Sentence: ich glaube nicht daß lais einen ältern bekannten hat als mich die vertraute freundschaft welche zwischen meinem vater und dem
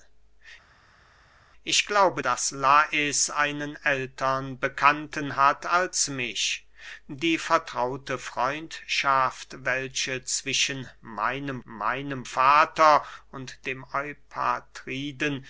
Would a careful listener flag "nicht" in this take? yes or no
yes